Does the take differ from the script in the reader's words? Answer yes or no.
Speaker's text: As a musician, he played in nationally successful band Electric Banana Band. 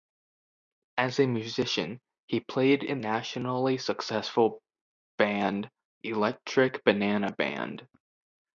no